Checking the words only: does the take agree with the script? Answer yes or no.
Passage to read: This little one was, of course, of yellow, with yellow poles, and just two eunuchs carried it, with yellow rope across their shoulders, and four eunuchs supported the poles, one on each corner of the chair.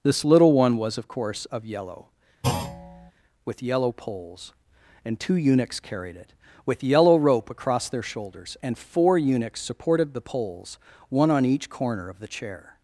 no